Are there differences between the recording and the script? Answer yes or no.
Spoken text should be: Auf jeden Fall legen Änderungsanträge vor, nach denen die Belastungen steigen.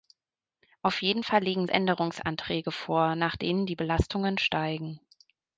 no